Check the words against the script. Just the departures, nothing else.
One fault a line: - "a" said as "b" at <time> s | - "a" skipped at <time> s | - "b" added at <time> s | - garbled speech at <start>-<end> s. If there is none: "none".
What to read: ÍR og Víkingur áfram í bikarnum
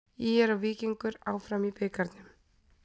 none